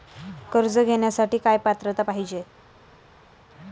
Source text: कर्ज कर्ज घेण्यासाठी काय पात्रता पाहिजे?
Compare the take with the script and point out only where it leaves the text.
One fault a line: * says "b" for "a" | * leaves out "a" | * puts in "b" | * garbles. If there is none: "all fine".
* leaves out "कर्ज"